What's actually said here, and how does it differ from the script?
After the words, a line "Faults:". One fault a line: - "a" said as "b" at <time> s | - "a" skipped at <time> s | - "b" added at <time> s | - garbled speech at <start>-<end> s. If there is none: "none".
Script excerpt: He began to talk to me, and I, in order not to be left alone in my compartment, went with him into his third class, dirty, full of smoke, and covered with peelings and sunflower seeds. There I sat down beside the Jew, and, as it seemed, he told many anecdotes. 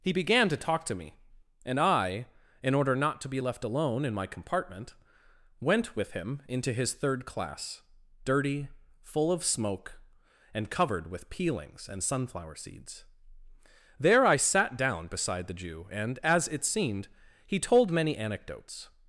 He began to talk to me, and I, in order not to be left alone in my compartment, went with him into his third class, dirty, full of smoke, and covered with peelings and sunflower seeds. There I sat down beside the Jew, and, as it seemed, he told many anecdotes.
Faults:
none